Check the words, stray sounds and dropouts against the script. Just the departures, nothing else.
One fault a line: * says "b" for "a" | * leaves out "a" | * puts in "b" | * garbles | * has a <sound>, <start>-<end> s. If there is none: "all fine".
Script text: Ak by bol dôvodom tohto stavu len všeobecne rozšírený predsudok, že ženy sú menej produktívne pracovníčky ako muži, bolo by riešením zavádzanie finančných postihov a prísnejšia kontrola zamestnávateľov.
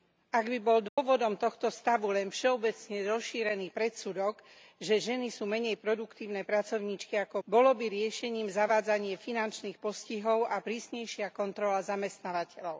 * has a dropout, 0.9-1.0 s
* leaves out "muži"